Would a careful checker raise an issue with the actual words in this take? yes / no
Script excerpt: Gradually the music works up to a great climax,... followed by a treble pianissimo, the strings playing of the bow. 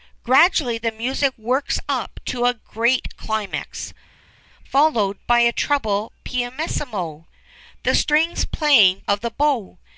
no